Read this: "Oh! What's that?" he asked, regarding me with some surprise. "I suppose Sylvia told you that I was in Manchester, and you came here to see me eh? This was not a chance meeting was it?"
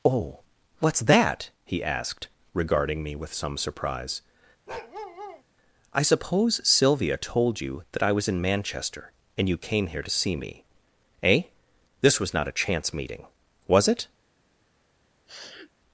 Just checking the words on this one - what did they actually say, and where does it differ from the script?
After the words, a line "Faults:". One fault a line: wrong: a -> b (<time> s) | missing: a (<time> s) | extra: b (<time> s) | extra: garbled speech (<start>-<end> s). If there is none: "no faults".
"Oh! What's that?" he asked, regarding me with some surprise. "I suppose Sylvia told you that I was in Manchester, and you came here to see me eh? This was not a chance meeting was it?"
Faults:
no faults